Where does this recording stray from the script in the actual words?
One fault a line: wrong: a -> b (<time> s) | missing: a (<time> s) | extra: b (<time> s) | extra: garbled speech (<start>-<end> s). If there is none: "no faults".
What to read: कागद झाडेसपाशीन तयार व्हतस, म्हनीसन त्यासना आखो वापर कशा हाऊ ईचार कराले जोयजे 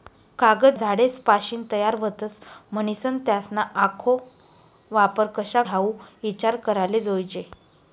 no faults